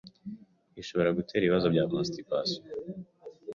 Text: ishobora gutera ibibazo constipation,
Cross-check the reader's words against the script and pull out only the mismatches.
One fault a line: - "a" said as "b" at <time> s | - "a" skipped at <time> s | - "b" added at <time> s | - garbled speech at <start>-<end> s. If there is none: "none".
- "bya" added at 1.7 s